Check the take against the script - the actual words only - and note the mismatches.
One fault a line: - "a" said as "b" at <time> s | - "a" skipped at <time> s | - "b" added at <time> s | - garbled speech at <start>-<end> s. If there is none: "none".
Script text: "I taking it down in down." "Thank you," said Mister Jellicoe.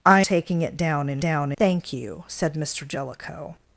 none